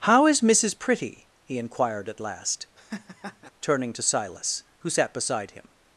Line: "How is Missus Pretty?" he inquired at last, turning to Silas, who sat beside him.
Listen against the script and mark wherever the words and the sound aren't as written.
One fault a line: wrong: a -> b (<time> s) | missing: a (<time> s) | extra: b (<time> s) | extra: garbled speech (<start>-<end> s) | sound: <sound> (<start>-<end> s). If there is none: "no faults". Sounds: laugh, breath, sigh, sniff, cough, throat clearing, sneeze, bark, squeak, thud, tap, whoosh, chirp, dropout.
sound: laugh (2.8-3.5 s)